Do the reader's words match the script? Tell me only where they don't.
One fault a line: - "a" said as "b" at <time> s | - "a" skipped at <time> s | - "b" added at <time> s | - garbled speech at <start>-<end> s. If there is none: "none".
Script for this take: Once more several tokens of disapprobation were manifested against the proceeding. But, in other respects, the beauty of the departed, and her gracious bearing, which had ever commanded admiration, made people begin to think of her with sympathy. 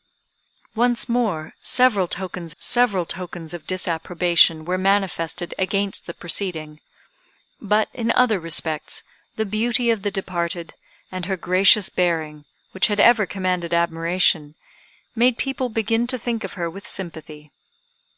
- "several tokens" added at 2.6 s